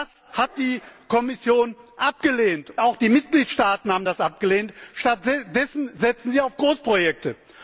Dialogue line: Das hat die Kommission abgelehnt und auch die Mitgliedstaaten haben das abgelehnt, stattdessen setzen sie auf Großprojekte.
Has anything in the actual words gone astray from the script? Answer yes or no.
yes